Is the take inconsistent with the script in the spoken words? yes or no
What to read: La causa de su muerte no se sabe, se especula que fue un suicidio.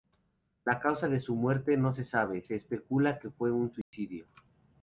no